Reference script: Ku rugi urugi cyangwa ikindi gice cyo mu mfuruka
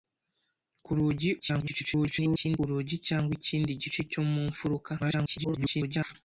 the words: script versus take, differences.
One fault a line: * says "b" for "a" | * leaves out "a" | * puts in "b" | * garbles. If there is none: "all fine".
* garbles
* garbles